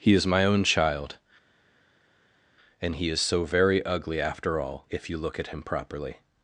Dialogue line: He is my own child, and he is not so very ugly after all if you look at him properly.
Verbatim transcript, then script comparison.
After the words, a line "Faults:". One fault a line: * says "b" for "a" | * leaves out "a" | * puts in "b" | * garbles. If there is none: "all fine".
He is my own child, and he is so very ugly after all if you look at him properly.
Faults:
* leaves out "not"